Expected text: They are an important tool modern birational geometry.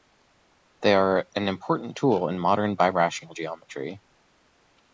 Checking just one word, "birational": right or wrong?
right